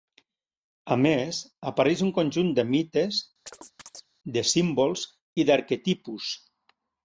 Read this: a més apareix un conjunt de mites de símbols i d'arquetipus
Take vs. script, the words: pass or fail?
pass